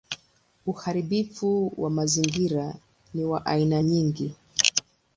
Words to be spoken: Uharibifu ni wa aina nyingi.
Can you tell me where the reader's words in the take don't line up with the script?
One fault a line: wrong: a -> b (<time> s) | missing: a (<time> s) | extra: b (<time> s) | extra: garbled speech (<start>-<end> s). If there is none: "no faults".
extra: wa mazingira (1.8 s)